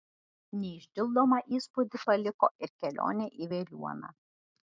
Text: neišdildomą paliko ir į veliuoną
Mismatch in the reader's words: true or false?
true